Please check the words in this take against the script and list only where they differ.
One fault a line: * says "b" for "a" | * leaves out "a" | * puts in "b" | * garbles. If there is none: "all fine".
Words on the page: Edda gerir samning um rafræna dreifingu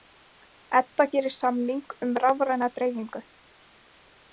all fine